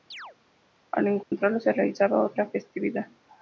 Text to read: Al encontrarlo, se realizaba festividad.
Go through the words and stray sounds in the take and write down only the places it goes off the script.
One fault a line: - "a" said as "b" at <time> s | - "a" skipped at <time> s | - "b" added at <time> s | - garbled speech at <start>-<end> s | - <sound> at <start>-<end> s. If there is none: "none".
- chirp at 0.1-0.4 s
- dropout at 1.2-1.3 s
- "otra" added at 2.2 s